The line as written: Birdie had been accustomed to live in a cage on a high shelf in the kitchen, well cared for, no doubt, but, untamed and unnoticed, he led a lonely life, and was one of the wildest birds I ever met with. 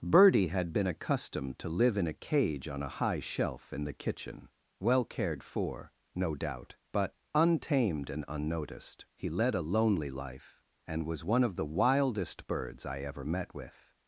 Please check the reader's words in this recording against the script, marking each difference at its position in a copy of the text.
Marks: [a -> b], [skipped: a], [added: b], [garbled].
Birdie had been accustomed to live in a cage on a high shelf in the kitchen, well cared for, no doubt, but, untamed and unnoticed, he led a lonely life, and was one of the wildest birds I ever met with.